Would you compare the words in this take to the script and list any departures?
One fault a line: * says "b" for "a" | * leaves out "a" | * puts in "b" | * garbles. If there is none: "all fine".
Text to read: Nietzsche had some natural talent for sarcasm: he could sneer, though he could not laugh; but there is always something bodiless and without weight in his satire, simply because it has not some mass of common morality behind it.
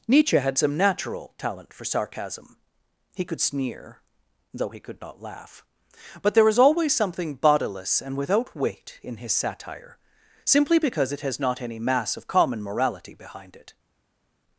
* says "any" for "some"